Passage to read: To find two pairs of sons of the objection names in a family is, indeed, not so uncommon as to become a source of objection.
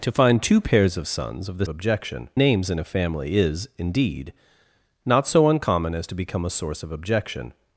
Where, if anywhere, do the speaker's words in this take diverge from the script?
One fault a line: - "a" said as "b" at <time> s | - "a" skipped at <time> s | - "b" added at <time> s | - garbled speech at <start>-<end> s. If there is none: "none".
none